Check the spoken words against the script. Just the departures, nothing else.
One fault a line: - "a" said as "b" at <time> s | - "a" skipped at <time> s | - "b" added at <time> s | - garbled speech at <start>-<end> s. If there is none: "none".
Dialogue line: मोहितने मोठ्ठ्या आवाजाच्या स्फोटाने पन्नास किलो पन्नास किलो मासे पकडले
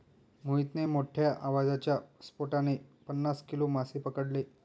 - "पन्नास किलो" skipped at 3.7 s